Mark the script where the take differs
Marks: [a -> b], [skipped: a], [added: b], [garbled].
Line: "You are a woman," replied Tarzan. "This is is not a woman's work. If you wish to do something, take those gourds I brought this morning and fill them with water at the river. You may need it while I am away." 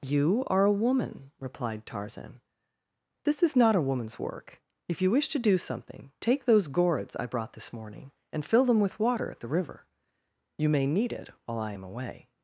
"You are a woman," replied Tarzan. "This is [skipped: is] not a woman's work. If you wish to do something, take those gourds I brought this morning and fill them with water at the river. You may need it while I am away."